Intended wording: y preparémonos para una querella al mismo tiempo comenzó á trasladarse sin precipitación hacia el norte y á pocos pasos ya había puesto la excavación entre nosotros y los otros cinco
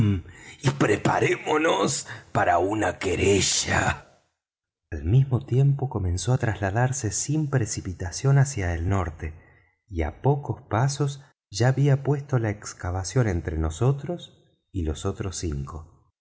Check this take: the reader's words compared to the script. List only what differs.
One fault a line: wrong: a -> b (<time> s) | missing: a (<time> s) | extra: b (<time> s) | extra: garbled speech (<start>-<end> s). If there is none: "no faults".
no faults